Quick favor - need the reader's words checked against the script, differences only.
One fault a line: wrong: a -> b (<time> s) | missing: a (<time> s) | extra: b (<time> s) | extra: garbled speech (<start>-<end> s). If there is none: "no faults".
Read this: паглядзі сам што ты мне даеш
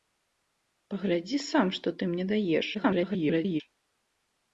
extra: garbled speech (2.7-3.6 s)